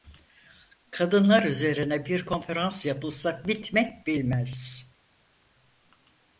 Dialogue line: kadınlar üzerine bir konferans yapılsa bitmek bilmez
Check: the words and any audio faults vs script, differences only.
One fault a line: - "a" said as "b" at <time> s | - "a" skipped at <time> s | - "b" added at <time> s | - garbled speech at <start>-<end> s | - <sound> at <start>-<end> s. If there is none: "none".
none